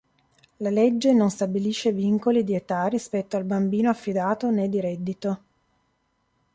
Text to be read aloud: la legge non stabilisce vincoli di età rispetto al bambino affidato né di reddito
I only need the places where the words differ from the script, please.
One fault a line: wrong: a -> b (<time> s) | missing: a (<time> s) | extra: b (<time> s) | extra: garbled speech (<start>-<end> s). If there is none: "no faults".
no faults